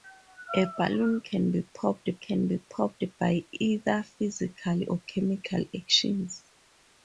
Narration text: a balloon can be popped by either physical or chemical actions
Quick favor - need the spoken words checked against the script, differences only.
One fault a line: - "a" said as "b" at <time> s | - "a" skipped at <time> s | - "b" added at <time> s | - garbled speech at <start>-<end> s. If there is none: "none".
- "can be popped" added at 2.2 s